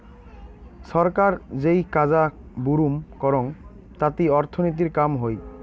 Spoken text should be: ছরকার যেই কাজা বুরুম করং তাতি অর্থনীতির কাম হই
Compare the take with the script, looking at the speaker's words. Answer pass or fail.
pass